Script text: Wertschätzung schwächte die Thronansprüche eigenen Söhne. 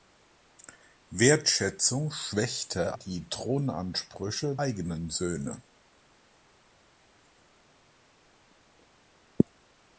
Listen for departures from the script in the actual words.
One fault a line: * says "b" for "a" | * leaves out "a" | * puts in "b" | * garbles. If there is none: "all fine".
all fine